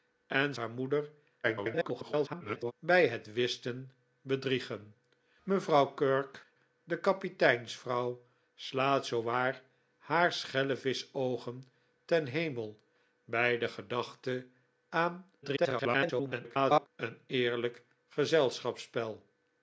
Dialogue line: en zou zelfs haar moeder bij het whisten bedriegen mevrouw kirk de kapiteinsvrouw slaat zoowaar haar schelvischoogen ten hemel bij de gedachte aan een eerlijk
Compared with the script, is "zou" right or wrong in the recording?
wrong